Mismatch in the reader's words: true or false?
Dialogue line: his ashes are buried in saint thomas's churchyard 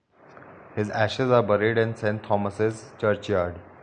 false